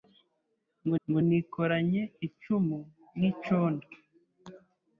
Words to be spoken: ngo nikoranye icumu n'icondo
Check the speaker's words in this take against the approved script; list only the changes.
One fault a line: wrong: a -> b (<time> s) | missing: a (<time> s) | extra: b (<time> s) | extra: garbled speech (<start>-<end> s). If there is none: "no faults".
extra: ngo (1.1 s)